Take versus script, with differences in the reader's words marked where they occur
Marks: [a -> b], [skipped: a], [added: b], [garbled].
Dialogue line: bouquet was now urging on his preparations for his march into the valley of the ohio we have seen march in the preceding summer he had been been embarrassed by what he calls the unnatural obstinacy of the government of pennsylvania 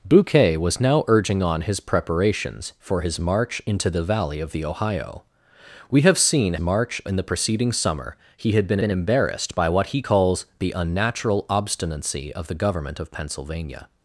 bouquet was now urging on his preparations for his march into the valley of the ohio we have seen march in the preceding summer he had been been embarrassed by what he calls the unnatural obstinacy of the government of pennsylvania